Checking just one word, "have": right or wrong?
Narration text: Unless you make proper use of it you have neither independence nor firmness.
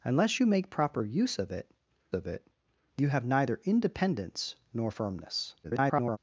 right